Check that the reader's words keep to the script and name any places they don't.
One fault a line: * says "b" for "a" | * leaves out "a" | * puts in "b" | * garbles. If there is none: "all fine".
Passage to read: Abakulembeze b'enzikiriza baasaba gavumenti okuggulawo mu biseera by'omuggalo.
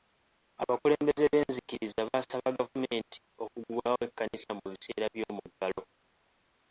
* puts in "ekkanisa"